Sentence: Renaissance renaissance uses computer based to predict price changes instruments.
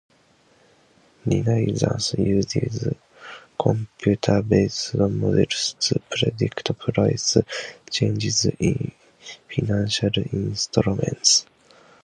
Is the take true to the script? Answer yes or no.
no